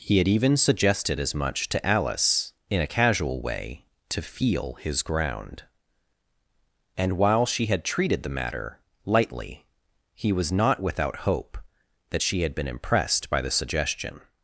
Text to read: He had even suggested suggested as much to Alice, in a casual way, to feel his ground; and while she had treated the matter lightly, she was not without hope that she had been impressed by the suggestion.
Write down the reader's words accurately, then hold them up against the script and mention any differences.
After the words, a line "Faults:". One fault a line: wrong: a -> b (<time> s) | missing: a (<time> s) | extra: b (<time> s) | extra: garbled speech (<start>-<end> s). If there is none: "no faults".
He had even suggested as much to Alice, in a casual way, to feel his ground; and while she had treated the matter lightly, he was not without hope that she had been impressed by the suggestion.
Faults:
missing: suggested (1.2 s)
wrong: she -> he (10.1 s)